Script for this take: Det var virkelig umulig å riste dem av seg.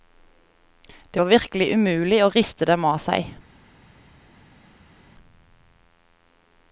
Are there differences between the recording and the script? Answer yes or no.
no